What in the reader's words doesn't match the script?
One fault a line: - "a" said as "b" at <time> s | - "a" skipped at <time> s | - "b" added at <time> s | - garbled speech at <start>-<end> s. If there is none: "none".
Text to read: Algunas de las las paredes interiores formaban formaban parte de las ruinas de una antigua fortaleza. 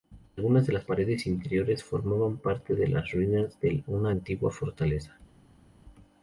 - "las" skipped at 0.9 s
- "formaban" skipped at 2.4 s